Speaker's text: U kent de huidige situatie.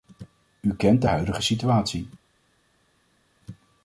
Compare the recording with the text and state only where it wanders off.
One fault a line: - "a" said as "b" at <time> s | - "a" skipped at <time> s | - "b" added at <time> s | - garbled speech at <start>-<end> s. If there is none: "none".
none